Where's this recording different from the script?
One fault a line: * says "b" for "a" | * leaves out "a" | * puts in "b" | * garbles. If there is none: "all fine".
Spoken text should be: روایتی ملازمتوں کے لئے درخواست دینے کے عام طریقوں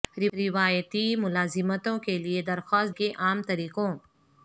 * leaves out "دینے"